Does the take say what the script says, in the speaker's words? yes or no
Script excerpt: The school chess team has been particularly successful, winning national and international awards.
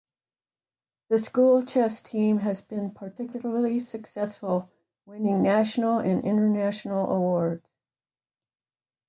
yes